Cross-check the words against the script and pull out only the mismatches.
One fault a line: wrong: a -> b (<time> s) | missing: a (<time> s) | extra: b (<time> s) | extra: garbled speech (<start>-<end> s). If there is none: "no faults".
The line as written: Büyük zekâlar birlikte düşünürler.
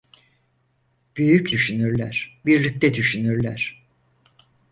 wrong: zekâlar -> düşünürler (1.5 s)